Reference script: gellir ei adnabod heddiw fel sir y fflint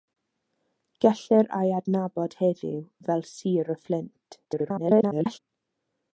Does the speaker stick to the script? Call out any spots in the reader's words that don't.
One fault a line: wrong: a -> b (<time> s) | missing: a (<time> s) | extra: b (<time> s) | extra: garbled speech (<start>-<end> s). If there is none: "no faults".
extra: garbled speech (4.4-5.4 s)